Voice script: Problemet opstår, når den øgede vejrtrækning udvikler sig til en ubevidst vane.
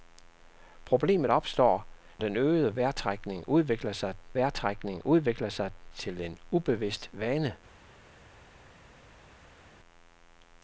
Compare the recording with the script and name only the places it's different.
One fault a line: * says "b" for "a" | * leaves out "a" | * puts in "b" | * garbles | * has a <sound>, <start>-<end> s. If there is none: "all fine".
* leaves out "når"
* puts in "vejrtrækning udvikler sig"